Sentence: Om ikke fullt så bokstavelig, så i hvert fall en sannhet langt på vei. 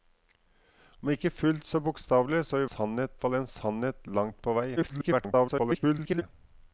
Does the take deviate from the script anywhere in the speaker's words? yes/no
yes